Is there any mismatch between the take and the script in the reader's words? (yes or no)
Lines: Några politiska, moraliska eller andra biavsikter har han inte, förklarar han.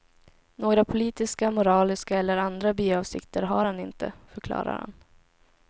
no